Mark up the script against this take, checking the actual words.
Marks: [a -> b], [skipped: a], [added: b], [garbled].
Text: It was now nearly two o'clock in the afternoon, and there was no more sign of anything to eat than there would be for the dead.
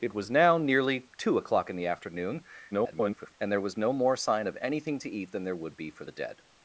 It was now nearly two o'clock in the afternoon, [garbled] and there was no more sign of anything to eat than there would be for the dead.